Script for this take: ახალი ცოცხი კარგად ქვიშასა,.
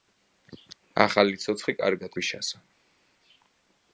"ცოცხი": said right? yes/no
yes